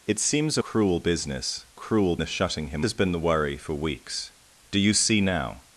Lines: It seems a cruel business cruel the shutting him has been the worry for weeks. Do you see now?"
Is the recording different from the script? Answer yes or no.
no